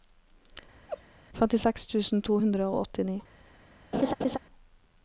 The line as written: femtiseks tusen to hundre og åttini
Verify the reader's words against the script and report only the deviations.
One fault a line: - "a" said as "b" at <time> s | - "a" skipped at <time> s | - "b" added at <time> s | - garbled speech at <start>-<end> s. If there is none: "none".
none